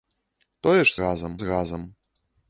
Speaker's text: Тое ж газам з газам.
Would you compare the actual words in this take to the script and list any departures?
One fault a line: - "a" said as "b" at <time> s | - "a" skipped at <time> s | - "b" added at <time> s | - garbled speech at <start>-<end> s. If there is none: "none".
none